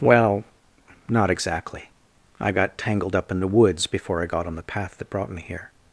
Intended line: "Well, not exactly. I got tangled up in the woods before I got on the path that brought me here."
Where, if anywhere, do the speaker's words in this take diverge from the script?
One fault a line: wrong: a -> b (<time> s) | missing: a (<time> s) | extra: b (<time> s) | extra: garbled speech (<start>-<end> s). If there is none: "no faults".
no faults